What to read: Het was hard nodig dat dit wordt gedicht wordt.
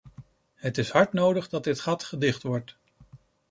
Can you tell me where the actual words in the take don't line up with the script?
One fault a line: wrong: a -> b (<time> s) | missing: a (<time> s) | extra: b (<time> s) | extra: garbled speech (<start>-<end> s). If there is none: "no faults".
wrong: was -> is (0.8 s)
wrong: wordt -> gat (1.8 s)